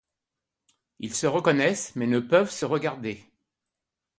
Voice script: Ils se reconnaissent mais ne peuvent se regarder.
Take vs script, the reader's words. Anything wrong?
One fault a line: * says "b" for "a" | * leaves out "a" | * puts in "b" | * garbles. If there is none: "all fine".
all fine